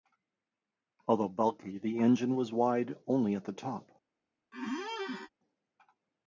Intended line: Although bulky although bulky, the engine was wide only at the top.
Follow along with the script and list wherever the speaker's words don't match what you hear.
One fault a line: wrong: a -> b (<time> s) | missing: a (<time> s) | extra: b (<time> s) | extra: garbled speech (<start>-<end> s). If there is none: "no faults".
missing: although bulky (1.8 s)